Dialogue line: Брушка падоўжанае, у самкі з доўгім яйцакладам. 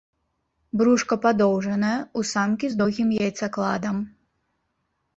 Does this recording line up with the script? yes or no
yes